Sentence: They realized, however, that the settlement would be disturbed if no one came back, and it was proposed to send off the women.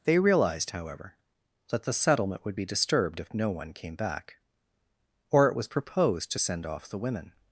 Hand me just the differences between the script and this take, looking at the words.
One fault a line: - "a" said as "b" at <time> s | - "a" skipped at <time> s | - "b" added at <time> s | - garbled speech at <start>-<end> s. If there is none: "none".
- "and" said as "or" at 5.3 s